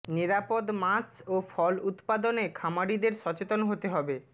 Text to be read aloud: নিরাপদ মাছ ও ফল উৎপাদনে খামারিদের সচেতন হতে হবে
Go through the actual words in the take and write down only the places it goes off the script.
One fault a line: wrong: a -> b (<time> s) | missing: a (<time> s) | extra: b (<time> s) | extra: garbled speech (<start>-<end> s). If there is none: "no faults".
no faults